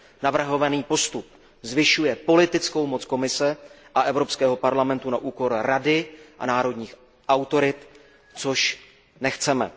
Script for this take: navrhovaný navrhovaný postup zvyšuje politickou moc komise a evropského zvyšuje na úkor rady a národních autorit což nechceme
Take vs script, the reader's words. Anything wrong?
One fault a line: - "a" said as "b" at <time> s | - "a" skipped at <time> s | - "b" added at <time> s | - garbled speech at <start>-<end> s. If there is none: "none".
- "navrhovaný" skipped at 0.8 s
- "zvyšuje" said as "parlamentu" at 4.5 s